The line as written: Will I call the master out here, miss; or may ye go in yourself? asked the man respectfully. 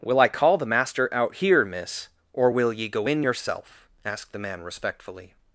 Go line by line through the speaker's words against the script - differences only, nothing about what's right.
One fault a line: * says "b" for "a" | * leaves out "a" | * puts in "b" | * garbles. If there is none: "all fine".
* says "will" for "may"